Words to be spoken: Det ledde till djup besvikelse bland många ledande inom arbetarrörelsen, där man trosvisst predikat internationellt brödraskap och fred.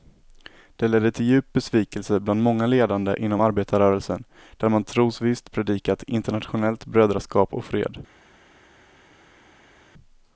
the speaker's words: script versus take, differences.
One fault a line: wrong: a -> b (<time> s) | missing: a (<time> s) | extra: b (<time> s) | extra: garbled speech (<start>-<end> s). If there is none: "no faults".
no faults